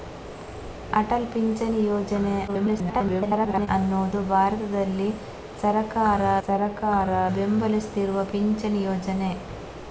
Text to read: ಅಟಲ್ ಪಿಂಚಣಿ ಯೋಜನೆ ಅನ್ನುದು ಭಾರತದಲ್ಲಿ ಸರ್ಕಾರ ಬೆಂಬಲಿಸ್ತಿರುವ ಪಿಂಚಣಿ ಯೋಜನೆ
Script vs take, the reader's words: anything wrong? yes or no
yes